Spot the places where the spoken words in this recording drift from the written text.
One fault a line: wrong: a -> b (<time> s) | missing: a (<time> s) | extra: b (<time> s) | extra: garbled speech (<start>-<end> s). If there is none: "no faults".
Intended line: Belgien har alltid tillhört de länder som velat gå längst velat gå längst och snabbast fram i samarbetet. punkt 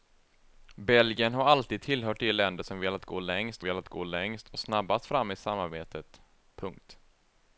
no faults